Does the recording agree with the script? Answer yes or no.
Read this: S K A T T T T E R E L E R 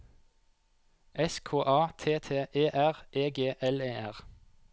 no